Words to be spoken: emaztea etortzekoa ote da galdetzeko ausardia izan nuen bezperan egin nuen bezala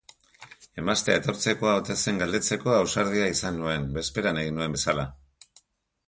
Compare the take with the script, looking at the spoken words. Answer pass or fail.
fail